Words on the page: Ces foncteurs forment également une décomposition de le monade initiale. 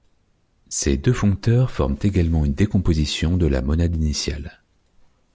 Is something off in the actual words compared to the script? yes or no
yes